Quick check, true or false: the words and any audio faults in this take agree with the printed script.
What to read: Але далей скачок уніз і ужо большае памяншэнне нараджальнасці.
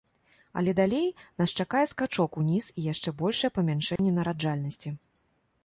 false